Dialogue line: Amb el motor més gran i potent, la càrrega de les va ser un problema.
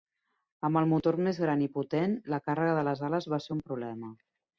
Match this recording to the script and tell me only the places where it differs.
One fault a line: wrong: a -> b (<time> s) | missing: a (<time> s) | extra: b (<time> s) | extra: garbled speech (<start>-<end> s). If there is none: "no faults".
extra: ales (3.1 s)